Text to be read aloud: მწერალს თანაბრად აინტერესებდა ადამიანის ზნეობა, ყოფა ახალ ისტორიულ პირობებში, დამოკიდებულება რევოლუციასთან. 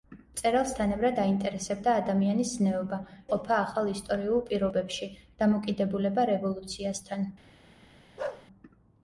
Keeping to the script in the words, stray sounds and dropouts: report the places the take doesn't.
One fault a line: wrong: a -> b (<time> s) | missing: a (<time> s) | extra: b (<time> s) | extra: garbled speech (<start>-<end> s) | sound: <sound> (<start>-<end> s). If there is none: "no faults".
sound: bark (8.2-8.5 s)